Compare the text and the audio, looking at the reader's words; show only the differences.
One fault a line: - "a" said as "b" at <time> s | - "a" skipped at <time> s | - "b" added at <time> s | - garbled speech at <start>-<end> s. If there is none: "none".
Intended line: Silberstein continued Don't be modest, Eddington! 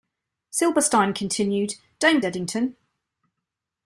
- "be modest" skipped at 2.2 s